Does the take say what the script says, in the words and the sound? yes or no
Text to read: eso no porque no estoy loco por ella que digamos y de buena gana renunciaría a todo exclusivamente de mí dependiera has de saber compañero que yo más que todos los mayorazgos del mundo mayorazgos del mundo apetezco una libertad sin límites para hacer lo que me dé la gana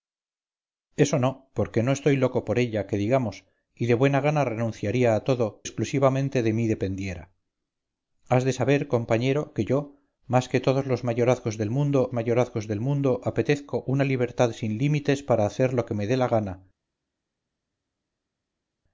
yes